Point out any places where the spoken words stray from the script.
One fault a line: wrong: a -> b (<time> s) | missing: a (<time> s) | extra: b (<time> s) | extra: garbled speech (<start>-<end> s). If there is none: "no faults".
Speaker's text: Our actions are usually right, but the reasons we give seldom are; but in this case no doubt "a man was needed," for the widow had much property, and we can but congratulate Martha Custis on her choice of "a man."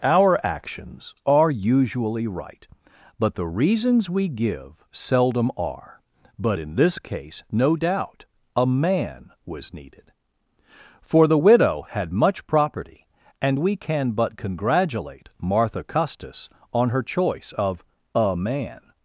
no faults